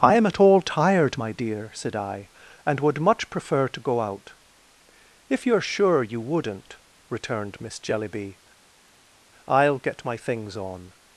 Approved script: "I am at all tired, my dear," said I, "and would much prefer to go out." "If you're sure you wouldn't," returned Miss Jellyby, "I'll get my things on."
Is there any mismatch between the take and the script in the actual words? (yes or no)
no